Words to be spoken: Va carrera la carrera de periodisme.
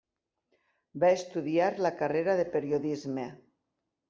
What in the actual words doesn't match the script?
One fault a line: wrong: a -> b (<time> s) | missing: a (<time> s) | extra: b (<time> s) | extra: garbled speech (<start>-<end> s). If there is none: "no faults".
wrong: carrera -> estudiar (1.2 s)